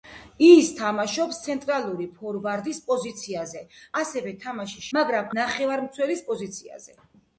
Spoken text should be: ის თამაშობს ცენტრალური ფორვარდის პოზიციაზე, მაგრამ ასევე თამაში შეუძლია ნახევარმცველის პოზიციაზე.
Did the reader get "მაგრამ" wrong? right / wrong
wrong